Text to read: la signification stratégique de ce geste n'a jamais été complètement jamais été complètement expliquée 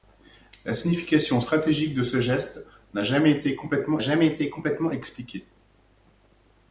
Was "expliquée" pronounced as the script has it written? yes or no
yes